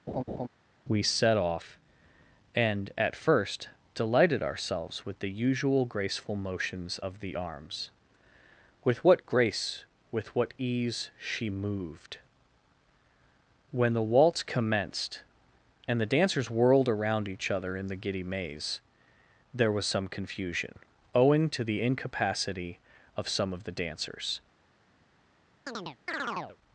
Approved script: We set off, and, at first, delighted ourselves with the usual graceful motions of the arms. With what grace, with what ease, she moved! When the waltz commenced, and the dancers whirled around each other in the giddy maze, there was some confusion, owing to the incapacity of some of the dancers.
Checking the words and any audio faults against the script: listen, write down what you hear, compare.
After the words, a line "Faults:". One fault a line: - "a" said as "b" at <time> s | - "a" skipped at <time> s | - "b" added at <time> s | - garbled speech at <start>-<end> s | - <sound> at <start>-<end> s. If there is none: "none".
We set off, and, at first, delighted ourselves with the usual graceful motions of the arms. With what grace, with what ease, she moved! When the waltz commenced, and the dancers whirled around each other in the giddy maze, there was some confusion, owing to the incapacity of some of the dancers.
Faults:
- laugh at 0.1-0.5 s
- chirp at 25.7-26.6 s